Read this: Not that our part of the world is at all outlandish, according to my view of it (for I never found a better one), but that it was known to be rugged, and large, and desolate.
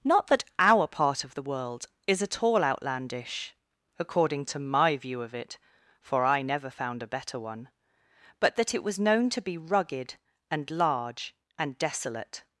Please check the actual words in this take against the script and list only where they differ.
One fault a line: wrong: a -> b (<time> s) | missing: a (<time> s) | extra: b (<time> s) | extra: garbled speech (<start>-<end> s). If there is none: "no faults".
no faults